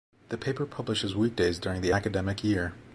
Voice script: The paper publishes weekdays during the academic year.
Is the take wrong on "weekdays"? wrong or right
right